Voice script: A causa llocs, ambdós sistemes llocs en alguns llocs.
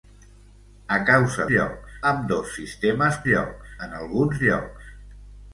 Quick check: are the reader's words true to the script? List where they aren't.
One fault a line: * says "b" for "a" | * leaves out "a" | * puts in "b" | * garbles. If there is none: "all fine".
all fine